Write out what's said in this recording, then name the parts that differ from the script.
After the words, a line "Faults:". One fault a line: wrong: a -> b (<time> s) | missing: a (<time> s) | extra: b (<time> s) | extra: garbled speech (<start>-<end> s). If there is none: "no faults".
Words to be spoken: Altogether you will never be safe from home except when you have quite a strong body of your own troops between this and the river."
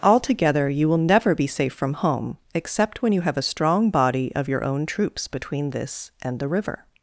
Altogether you will never be safe from home except when you have a strong body of your own troops between this and the river."
Faults:
missing: quite (3.4 s)